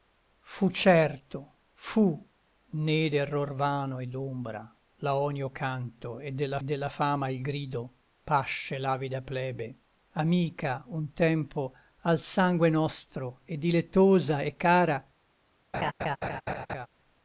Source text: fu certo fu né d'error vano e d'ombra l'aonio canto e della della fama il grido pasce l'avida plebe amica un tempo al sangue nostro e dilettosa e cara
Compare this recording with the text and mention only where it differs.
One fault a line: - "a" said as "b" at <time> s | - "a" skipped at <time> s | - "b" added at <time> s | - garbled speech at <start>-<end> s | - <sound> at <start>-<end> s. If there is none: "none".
- laugh at 15.7-16.9 s